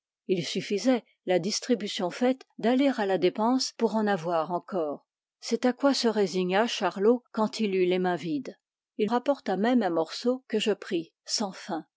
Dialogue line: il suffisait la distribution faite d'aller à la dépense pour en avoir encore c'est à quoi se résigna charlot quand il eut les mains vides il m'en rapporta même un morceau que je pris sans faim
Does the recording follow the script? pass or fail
fail